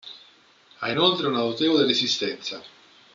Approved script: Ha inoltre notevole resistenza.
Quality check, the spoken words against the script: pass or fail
fail